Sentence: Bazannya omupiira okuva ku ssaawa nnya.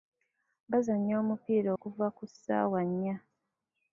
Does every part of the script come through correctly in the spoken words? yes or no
yes